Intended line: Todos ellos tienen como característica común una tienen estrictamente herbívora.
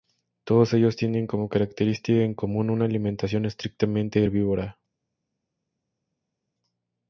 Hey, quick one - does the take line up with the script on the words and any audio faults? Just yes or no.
no